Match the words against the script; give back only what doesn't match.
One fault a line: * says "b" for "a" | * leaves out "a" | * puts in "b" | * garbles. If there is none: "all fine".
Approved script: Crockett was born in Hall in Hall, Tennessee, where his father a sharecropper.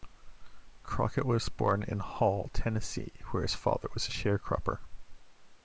* leaves out "in Hall"
* puts in "was"